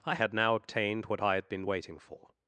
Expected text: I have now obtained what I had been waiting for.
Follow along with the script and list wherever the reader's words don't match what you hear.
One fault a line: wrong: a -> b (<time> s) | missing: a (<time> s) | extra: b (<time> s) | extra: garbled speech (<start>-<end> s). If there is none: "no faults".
wrong: have -> had (0.1 s)